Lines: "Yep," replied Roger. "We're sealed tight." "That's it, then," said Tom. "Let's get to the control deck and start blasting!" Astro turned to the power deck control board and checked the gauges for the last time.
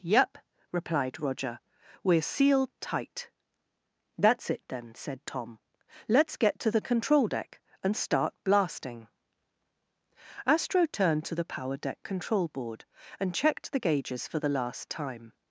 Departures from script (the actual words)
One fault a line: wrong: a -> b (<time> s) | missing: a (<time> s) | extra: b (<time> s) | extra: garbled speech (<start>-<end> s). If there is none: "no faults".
no faults